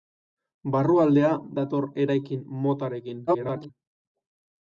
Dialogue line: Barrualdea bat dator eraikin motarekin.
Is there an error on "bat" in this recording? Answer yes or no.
yes